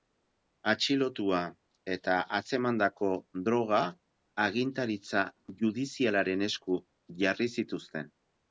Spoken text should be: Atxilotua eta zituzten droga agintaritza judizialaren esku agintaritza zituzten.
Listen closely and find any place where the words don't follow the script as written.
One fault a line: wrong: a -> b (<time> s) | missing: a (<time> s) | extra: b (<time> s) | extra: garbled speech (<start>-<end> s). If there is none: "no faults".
wrong: zituzten -> atzemandako (2.4 s)
wrong: agintaritza -> jarri (7.3 s)